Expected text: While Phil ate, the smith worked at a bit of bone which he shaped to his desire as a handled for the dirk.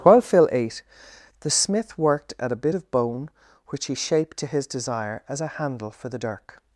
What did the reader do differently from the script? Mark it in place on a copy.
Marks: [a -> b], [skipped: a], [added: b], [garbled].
While Phil ate, the smith worked at a bit of bone which he shaped to his desire as a [handled -> handle] for the dirk.